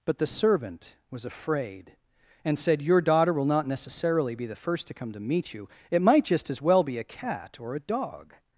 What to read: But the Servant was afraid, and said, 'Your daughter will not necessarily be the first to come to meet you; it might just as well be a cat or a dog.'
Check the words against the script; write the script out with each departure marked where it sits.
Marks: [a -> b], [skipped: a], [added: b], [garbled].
But the Servant was afraid, and said, 'Your daughter will not necessarily be the first to come to meet you; it might just as well be a cat or a dog.'